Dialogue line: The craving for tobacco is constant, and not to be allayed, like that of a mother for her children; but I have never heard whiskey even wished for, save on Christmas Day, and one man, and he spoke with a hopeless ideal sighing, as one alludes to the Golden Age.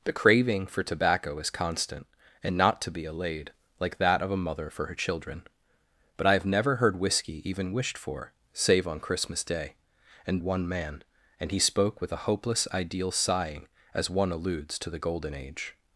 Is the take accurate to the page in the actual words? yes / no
yes